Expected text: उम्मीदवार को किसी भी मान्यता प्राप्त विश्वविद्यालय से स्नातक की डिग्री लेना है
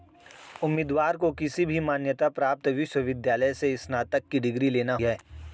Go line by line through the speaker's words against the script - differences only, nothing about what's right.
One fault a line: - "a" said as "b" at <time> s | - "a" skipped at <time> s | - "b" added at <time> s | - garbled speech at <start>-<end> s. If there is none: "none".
none